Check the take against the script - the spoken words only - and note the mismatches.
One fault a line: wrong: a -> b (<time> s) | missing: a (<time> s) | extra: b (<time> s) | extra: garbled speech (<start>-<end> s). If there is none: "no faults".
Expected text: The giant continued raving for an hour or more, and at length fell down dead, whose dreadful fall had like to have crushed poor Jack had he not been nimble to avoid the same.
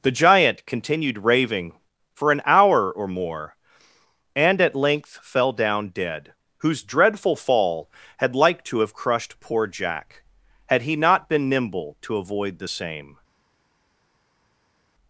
no faults